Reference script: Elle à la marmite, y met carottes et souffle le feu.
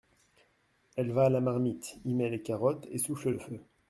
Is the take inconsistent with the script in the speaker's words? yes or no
yes